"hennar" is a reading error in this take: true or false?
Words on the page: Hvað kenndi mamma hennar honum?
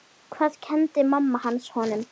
true